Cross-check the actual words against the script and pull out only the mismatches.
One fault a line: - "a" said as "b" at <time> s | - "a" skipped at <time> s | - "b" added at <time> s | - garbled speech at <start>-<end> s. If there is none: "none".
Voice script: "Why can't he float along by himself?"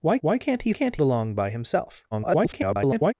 - "why" added at 0.2 s
- "float" said as "can't" at 0.7 s
- garbled speech at 2.1-3.1 s